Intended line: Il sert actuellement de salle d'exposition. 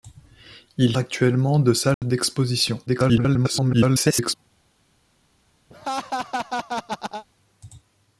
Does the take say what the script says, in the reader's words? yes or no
no